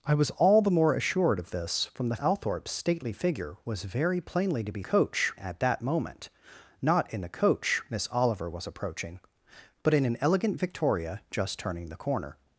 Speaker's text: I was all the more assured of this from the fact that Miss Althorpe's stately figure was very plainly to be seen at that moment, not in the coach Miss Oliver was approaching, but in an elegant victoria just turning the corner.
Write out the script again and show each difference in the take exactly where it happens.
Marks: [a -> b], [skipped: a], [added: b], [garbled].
I was all the more assured of this from the [skipped: fact that Miss] Althorpe's stately figure was very plainly to be [seen -> coach] at that moment, not in the coach Miss Oliver was approaching, but in an elegant victoria just turning the corner.